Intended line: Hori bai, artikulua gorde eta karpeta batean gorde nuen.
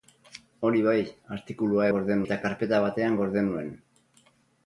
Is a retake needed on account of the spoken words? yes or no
no